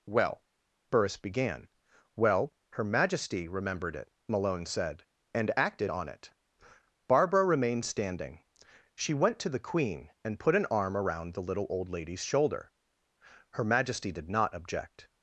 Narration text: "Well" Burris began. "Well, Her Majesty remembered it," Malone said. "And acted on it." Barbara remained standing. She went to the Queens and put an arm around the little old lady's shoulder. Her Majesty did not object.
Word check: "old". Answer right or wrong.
right